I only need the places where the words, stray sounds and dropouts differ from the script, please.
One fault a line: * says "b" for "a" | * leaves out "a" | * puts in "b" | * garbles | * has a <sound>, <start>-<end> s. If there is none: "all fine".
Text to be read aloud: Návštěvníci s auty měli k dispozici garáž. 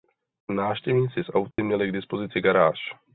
* has a dropout, 1.5-1.6 s